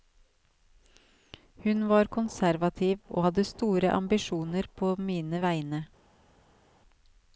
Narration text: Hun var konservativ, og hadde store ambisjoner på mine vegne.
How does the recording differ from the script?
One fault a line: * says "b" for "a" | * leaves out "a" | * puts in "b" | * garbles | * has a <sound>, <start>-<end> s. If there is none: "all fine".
all fine